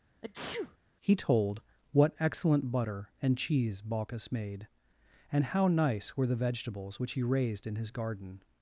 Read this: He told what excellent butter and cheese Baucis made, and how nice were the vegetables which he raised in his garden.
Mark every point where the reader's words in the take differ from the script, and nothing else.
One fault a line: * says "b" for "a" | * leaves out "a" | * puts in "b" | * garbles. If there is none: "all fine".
all fine